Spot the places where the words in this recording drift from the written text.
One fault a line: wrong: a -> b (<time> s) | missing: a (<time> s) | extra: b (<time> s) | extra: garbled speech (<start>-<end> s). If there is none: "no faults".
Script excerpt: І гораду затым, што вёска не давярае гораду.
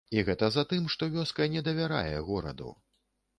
wrong: гораду -> гэта (0.2 s)